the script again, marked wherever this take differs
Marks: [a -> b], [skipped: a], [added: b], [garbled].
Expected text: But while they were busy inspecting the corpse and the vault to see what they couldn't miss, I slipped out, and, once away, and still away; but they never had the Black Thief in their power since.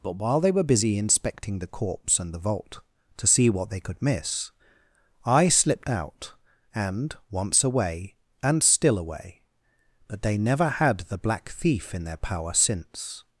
But while they were busy inspecting the corpse and the vault to see what they [couldn't -> could] miss, I slipped out, and, once away, and still away; but they never had the Black Thief in their power since.